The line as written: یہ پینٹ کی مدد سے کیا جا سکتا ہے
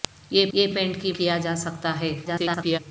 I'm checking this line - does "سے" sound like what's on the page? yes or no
no